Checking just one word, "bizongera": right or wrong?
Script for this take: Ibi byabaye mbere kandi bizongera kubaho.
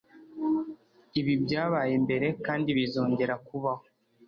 right